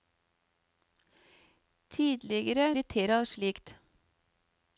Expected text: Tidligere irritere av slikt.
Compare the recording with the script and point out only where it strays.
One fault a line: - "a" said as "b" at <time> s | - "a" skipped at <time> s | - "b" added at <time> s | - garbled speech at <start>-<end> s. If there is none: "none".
none